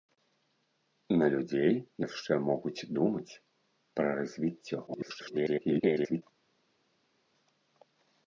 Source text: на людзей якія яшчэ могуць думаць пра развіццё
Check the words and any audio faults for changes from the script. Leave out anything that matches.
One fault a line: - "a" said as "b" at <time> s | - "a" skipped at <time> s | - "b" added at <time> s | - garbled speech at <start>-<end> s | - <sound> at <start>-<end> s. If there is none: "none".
- "якія" skipped at 1.7 s
- garbled speech at 4.9-6.2 s